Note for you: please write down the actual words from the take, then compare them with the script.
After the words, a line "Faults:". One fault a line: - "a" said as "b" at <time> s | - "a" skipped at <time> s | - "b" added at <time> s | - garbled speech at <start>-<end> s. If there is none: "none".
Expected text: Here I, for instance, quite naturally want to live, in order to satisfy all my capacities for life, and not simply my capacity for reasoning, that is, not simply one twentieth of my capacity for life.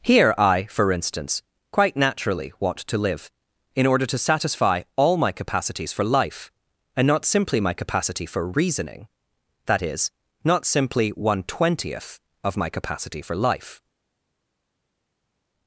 Here I, for instance, quite naturally want to live, in order to satisfy all my capacities for life, and not simply my capacity for reasoning, that is, not simply one twentieth of my capacity for life.
Faults:
none